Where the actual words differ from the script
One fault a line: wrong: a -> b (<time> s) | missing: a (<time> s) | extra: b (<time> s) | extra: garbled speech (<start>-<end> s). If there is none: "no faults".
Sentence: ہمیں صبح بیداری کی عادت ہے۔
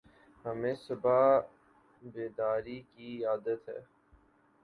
no faults